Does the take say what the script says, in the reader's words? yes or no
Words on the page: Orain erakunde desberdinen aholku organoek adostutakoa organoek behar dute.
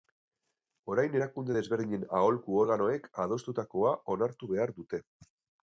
no